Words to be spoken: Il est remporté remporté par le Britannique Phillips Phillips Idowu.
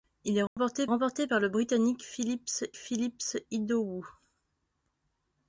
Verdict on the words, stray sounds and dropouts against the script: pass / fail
fail